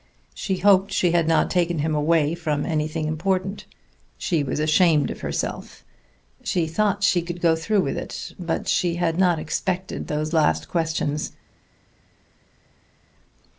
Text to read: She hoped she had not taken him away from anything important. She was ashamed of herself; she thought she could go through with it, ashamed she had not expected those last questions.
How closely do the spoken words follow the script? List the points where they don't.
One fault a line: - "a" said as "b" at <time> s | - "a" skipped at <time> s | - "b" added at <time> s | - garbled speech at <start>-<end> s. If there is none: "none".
- "ashamed" said as "but" at 8.4 s